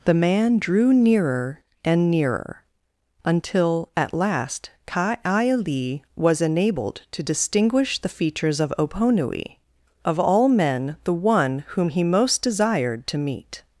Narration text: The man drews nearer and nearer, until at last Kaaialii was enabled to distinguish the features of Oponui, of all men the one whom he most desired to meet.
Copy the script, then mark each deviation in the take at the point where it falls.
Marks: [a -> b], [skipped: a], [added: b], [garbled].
The man [drews -> drew] nearer and nearer, until at last Kaaialii was enabled to distinguish the features of Oponui, of all men the one whom he most desired to meet.